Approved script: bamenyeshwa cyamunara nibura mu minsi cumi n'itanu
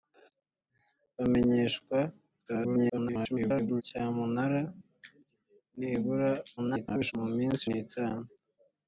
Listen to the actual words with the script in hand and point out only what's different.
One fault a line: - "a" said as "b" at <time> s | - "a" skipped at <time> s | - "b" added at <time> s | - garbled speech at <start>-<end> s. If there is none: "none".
- garbled speech at 2.5-3.8 s
- garbled speech at 6.6-7.1 s
- "cumi" skipped at 7.6 s